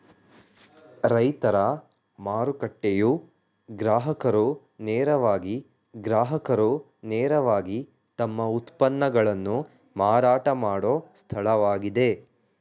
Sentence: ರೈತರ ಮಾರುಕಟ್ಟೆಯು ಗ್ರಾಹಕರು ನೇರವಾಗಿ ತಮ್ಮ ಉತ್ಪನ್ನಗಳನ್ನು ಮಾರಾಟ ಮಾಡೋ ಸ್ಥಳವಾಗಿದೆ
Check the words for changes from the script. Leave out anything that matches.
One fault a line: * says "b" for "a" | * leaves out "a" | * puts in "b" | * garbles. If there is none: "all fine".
* puts in "ಗ್ರಾಹಕರು ನೇರವಾಗಿ"